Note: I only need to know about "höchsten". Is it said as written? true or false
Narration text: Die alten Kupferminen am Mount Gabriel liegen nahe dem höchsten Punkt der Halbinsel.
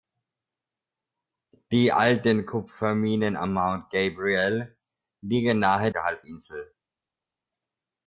false